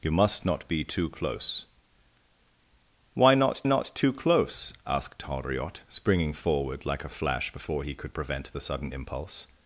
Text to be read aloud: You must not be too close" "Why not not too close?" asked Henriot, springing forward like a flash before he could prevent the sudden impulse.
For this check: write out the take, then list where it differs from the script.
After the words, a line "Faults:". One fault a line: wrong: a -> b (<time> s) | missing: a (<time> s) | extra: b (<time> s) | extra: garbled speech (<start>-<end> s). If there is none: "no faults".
You must not be too close" "Why not not too close?" asked Henriot, springing forward like a flash before he could prevent the sudden impulse.
Faults:
no faults